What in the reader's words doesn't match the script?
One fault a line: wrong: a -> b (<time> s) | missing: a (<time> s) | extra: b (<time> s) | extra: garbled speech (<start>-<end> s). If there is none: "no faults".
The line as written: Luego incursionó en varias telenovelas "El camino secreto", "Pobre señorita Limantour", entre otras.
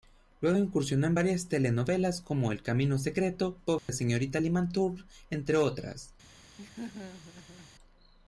extra: como (2.2 s)